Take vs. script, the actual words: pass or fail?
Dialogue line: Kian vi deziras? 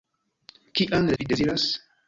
pass